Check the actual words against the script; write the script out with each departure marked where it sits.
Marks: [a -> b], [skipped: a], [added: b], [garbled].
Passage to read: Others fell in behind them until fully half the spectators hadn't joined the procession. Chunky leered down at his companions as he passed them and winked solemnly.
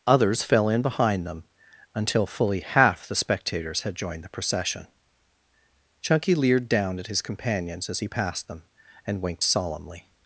Others fell in behind them until fully half the spectators [hadn't -> had] joined the procession. Chunky leered down at his companions as he passed them and winked solemnly.